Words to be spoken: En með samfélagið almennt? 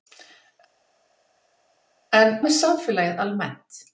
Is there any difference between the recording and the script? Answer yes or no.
no